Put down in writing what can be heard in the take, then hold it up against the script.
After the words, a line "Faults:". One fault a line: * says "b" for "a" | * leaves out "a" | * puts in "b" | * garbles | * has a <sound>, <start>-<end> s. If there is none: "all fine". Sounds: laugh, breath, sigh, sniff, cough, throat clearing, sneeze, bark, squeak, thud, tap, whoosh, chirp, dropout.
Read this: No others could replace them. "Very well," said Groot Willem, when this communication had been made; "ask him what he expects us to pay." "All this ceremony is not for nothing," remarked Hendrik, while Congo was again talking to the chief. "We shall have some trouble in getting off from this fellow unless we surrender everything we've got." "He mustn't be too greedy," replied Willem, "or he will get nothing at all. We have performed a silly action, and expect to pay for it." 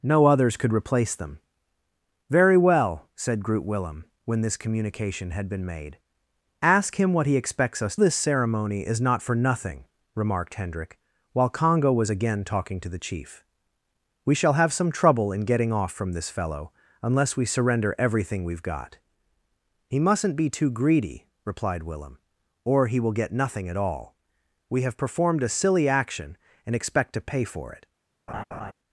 No others could replace them. "Very well," said Groot Willem, when this communication had been made; "ask him what he expects us this ceremony is not for nothing," remarked Hendrik, while Congo was again talking to the chief. "We shall have some trouble in getting off from this fellow unless we surrender everything we've got." "He mustn't be too greedy," replied Willem, "or he will get nothing at all. We have performed a silly action, and expect to pay for it."
Faults:
* leaves out "to pay All"
* has a laugh, 28.3-28.7 s